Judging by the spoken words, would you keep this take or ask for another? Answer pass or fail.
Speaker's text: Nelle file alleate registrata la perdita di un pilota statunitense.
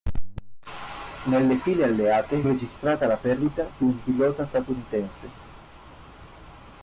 pass